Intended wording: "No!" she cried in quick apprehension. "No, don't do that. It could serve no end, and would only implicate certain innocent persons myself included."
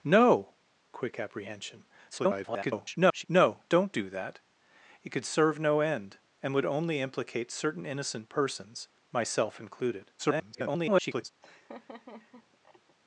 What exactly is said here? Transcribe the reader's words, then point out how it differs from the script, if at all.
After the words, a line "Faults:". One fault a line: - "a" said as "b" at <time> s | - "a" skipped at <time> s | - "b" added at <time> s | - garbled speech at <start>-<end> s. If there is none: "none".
"No!" quick apprehension. [garbled] "No, don't do that. It could serve no end, and would only implicate certain innocent persons myself included." [garbled]
Faults:
- "she cried in" skipped at 0.5 s
- garbled speech at 2.1-3.2 s
- garbled speech at 10.2-11.3 s